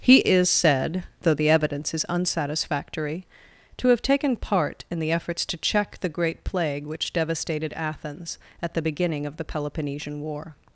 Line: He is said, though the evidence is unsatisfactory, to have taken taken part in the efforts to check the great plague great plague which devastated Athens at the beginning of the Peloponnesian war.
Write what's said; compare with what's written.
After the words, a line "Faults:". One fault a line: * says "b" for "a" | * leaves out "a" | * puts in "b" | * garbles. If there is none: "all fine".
He is said, though the evidence is unsatisfactory, to have taken part in the efforts to check the great plague which devastated Athens at the beginning of the Peloponnesian war.
Faults:
* leaves out "taken"
* leaves out "great plague"